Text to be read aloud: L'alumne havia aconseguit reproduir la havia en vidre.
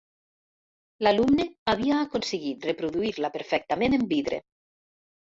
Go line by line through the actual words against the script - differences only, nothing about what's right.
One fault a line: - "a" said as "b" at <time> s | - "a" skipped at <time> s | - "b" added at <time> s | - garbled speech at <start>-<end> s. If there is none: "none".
- "havia" said as "perfectament" at 3.4 s